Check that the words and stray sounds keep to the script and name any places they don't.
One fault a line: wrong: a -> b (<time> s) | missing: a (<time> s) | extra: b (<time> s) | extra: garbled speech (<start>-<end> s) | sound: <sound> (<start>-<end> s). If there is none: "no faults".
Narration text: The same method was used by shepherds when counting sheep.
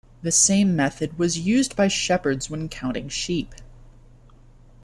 no faults